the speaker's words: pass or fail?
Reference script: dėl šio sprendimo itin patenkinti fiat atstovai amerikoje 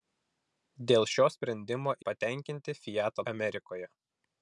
fail